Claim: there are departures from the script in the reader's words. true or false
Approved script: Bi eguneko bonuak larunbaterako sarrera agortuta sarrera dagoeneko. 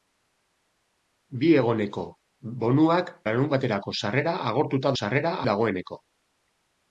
false